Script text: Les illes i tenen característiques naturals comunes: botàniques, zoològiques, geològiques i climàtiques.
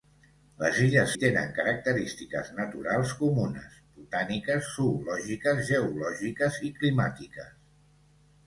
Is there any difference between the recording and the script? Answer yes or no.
no